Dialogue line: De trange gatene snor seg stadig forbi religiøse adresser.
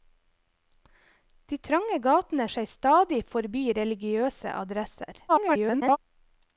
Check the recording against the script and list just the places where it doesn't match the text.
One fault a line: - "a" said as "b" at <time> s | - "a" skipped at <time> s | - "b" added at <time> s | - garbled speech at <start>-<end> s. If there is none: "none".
- "snor" skipped at 2.5 s
- garbled speech at 5.3-6.0 s